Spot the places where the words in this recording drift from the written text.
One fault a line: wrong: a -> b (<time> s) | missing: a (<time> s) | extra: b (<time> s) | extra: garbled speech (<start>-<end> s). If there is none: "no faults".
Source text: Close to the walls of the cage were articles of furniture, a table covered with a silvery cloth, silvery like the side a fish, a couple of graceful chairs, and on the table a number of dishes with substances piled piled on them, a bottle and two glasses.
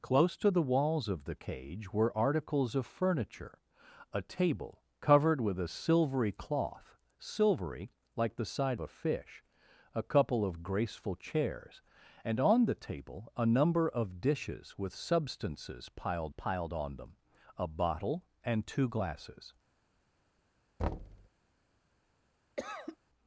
no faults